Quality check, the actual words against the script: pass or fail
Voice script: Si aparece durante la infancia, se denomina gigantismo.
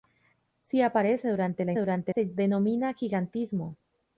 fail